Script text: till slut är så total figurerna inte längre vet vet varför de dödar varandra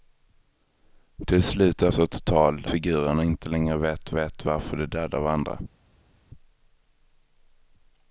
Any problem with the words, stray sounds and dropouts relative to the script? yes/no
no